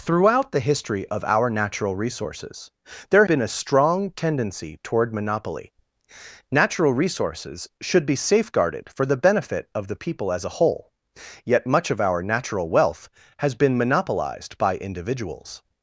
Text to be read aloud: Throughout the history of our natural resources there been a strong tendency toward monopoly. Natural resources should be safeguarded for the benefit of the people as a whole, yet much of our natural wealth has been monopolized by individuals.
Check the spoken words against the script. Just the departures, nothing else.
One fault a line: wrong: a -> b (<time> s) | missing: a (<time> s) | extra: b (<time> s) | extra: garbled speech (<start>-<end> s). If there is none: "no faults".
no faults